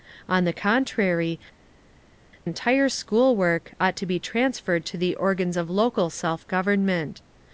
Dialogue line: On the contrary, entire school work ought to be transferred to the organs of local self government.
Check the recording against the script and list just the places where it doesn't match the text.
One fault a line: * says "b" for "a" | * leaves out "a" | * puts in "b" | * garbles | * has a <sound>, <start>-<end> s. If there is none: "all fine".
all fine